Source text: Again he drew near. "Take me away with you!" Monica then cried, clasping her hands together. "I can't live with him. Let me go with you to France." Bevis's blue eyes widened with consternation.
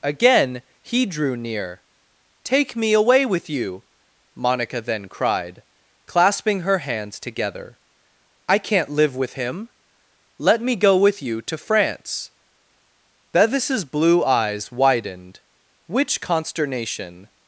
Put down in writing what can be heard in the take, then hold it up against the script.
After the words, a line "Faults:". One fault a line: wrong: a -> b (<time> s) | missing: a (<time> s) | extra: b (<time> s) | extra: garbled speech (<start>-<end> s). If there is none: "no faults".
Again he drew near. "Take me away with you!" Monica then cried, clasping her hands together. "I can't live with him. Let me go with you to France." Bevis's blue eyes widened which consternation.
Faults:
wrong: with -> which (15.9 s)